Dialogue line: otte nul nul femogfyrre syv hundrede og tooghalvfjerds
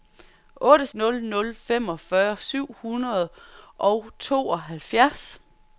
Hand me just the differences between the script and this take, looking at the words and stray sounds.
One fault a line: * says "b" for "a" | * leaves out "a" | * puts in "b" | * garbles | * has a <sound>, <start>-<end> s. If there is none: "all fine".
all fine